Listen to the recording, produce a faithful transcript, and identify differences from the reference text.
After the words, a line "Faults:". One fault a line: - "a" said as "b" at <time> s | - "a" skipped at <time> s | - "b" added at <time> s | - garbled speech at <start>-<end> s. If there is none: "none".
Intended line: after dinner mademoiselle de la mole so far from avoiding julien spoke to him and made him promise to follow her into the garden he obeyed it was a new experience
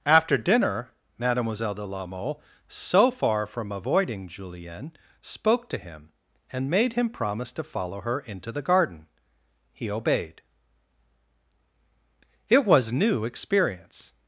after dinner mademoiselle de la mole so far from avoiding julien spoke to him and made him promise to follow her into the garden he obeyed it was new experience
Faults:
- "a" skipped at 12.9 s